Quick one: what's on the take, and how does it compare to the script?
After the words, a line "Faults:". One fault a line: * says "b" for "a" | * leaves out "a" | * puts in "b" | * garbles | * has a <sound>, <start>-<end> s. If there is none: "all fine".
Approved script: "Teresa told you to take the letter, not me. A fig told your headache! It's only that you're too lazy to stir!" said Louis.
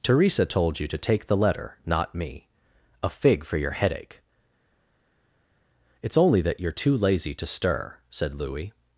"Teresa told you to take the letter, not me. A fig for your headache! It's only that you're too lazy to stir!" said Louis.
Faults:
* says "for" for "told"